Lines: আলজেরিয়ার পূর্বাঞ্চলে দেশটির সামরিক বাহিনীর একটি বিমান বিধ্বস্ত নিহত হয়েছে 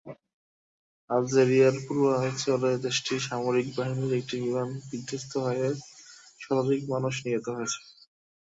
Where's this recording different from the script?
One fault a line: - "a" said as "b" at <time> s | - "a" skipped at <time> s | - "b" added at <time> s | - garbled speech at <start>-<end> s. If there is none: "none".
- "হয়ে শতাধিক মানুষ" added at 5.5 s